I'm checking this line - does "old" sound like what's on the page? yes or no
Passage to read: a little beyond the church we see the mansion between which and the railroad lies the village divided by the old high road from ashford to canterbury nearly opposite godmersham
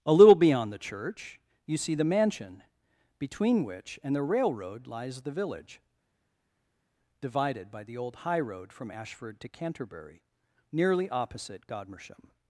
yes